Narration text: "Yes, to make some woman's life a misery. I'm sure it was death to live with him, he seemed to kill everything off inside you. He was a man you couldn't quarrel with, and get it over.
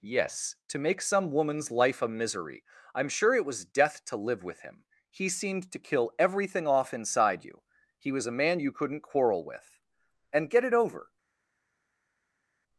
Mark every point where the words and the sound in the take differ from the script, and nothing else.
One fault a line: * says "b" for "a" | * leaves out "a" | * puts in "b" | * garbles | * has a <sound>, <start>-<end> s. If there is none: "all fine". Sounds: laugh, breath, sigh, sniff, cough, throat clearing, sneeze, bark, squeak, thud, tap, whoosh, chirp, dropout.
all fine